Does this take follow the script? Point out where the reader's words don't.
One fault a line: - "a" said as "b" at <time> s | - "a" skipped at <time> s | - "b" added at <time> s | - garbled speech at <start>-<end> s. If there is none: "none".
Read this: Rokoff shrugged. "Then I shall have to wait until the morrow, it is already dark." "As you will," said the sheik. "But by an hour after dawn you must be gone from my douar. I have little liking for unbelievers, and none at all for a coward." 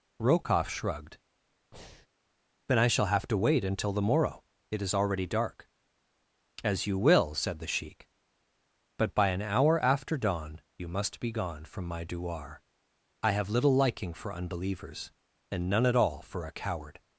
none